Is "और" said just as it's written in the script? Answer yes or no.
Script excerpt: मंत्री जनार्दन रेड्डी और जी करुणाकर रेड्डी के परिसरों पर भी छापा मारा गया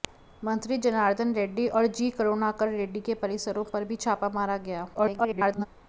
yes